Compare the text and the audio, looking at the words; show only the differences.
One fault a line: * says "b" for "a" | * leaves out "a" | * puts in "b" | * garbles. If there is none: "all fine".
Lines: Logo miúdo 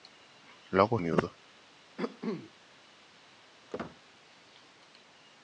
all fine